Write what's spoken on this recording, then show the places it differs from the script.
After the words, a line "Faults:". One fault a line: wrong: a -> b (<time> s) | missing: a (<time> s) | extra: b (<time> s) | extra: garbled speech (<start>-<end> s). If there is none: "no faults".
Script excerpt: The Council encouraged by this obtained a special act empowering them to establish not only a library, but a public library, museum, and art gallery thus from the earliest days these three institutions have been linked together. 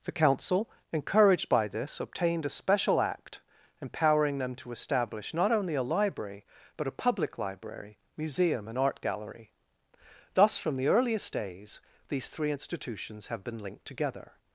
The Council encouraged by this obtained a special act empowering them to establish not only a library, but a public library, museum, and art gallery thus from the earliest days these three institutions have been linked together.
Faults:
no faults